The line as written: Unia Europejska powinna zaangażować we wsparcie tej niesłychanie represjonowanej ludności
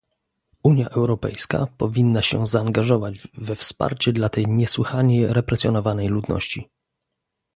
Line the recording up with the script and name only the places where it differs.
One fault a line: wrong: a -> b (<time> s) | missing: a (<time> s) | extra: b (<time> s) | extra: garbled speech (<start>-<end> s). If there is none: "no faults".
extra: się (2.2 s)
extra: dla (4.1 s)